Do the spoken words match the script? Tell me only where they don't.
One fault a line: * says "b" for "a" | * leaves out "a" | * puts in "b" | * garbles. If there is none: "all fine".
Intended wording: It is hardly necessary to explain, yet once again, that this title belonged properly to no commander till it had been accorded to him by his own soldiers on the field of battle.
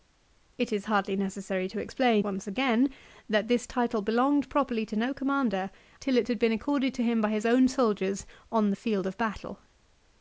* leaves out "yet"